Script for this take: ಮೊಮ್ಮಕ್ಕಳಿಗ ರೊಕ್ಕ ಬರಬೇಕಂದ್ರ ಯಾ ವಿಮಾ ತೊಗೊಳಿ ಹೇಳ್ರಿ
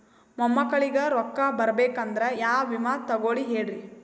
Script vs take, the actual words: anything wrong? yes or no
no